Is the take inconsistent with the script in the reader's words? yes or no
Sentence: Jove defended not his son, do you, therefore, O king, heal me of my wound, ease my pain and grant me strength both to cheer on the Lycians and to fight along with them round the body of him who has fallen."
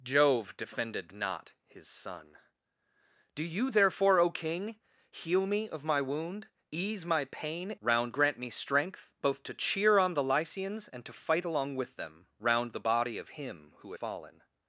yes